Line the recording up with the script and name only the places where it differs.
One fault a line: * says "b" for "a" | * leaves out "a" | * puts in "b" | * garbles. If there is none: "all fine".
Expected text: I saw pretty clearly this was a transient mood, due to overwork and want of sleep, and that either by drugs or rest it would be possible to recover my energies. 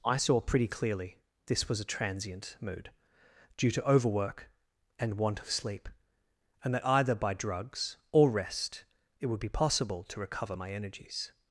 all fine